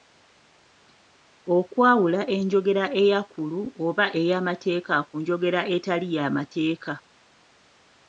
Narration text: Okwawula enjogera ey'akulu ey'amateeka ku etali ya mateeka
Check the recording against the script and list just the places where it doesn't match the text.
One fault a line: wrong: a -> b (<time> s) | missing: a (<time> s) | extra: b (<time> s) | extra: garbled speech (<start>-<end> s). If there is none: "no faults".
extra: oba (3.9 s)
extra: njogera (5.2 s)